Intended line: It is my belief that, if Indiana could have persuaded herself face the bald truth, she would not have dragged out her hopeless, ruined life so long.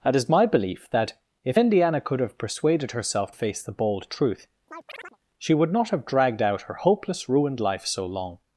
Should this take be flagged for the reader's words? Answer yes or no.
no